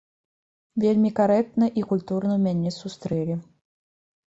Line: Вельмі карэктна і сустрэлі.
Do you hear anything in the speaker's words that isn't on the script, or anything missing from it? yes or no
yes